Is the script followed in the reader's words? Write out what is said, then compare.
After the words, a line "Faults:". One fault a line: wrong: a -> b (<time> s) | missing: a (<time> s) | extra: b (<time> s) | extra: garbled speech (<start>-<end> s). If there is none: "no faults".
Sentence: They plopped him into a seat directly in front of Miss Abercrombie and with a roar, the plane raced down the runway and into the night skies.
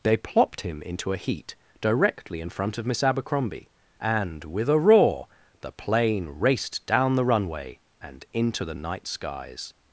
They plopped him into a heat directly in front of Miss Abercrombie and with a roar, the plane raced down the runway and into the night skies.
Faults:
wrong: seat -> heat (1.2 s)